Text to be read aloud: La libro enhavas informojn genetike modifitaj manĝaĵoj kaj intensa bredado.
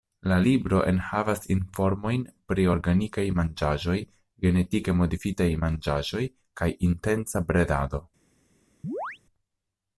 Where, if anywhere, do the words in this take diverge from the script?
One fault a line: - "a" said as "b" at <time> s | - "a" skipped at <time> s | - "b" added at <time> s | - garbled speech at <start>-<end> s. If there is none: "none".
- "pri organikaj manĝaĵoj" added at 2.5 s